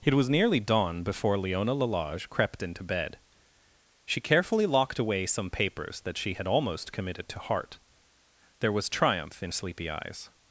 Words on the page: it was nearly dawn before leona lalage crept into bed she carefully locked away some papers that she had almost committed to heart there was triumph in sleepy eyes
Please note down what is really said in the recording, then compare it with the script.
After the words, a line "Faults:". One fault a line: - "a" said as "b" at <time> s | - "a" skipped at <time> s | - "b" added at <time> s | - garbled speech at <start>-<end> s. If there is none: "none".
it was nearly dawn before leona lalage crept into bed she carefully locked away some papers that she had almost committed to heart there was triumph in sleepy eyes
Faults:
none